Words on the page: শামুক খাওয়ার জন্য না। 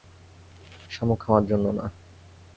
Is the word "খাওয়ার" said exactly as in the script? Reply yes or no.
yes